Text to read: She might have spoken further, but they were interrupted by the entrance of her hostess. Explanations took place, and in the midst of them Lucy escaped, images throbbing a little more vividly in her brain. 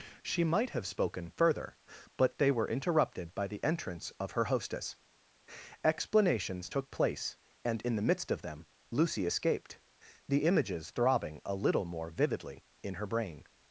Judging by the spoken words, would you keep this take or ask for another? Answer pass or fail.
fail